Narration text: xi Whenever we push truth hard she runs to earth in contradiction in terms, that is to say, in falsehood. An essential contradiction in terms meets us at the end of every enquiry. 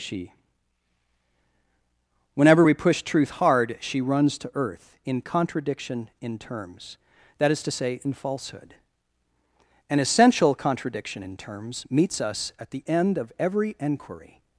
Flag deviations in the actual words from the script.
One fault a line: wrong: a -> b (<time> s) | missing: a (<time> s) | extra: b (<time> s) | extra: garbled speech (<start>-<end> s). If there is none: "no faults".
wrong: xi -> she (0.0 s)